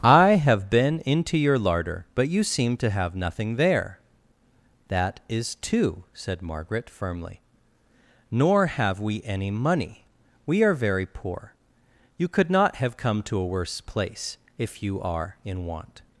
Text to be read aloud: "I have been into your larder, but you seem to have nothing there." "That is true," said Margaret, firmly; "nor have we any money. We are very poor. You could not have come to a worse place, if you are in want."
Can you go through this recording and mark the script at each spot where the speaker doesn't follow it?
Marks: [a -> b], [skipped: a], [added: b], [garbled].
"I have been into your larder, but you seem to have nothing there." "That is [true," -> two] said Margaret, firmly; "nor have we any money. We are very poor. You could not have come to a worse place, if you are in want."